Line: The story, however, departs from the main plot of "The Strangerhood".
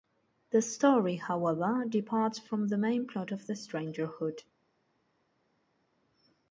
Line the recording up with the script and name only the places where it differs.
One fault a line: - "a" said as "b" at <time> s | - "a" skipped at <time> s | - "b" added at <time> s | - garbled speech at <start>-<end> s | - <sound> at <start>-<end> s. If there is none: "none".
none